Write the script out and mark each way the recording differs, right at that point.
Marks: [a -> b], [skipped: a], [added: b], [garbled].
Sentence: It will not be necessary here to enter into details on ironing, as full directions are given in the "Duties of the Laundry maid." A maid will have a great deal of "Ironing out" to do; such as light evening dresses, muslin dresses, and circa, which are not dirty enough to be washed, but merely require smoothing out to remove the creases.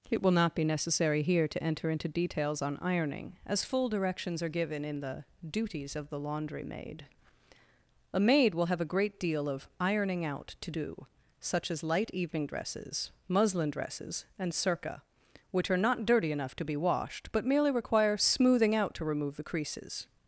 It will not be necessary here to enter into details on ironing, as full directions are given in the "Duties of the Laundry maid." A maid will have a great deal of "Ironing out" to do; such as light evening dresses, muslin dresses, and circa, which are not dirty enough to be washed, but merely require smoothing out to remove the creases.